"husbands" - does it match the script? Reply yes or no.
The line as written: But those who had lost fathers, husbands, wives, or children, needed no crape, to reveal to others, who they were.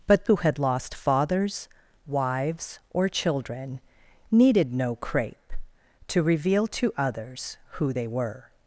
no